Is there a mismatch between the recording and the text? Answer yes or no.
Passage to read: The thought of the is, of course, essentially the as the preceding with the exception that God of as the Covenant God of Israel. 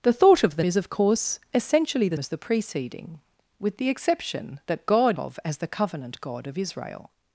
no